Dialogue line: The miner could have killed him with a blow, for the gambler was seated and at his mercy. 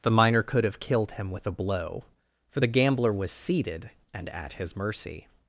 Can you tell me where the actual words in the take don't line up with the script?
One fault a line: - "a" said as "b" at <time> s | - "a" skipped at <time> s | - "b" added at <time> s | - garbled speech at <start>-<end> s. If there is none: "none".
none